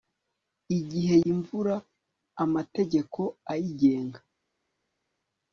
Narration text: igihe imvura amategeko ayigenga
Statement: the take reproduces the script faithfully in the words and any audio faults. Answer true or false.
true